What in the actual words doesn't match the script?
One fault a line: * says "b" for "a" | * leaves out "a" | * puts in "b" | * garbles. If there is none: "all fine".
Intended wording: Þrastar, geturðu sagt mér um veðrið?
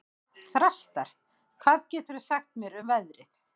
* puts in "hvað"